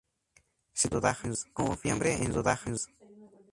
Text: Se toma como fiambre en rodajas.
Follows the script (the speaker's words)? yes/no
no